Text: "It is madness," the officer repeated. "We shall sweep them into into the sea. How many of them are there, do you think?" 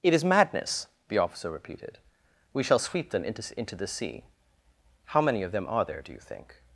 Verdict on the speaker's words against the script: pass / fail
pass